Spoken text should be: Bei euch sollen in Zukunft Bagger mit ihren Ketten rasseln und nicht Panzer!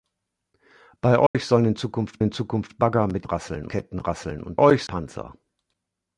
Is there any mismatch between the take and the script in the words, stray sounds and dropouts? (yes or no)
yes